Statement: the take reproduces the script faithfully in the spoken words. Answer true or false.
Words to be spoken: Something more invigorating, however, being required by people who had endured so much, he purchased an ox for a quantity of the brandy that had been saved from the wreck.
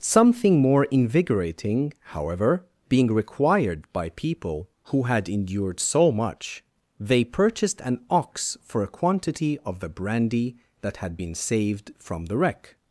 false